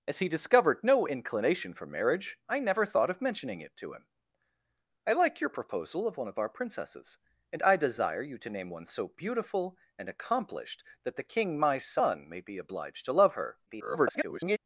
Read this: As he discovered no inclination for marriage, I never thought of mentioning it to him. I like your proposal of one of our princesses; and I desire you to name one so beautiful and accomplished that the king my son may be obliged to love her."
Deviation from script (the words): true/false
true